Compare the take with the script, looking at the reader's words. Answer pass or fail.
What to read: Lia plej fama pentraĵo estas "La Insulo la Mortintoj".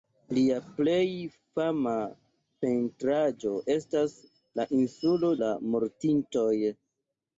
pass